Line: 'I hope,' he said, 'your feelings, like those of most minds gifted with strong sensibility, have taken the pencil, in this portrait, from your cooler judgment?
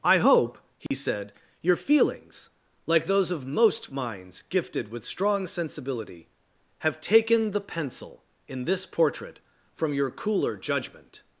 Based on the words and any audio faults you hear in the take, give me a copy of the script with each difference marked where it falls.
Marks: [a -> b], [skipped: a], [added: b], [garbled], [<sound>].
'I hope,' he [dropout] said, 'your feelings, like those of most minds gifted with strong sensibility, have taken the pencil, in this portrait, from your cooler judgment?